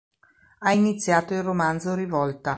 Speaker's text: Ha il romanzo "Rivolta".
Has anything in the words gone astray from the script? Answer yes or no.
yes